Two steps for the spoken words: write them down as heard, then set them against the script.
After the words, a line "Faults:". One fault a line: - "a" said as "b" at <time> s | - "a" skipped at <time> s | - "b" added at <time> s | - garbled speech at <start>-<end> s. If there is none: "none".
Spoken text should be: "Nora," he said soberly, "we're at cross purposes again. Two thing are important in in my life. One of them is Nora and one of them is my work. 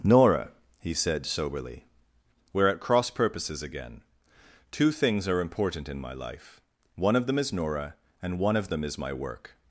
"Nora," he said soberly, "we're at cross purposes again. Two things are important in my life. One of them is Nora and one of them is my work.
Faults:
- "thing" said as "things" at 4.9 s
- "in" skipped at 6.0 s